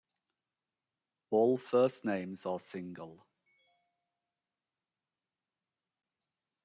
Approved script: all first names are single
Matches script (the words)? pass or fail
pass